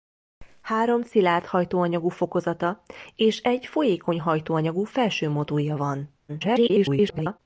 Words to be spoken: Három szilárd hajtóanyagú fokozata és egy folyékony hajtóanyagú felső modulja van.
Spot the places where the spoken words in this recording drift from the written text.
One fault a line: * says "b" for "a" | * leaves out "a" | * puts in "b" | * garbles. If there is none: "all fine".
* garbles